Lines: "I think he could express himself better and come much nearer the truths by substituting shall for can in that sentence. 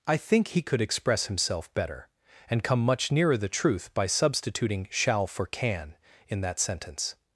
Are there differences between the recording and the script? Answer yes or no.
yes